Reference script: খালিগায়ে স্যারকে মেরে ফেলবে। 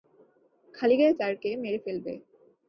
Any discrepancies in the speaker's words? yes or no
no